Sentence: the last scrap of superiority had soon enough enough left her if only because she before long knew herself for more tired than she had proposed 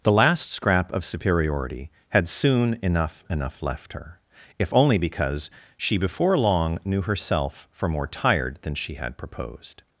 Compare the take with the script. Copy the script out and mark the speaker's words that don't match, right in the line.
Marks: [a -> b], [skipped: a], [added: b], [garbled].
the last scrap of superiority had soon enough enough left her if only because she before long knew herself for more tired than she had proposed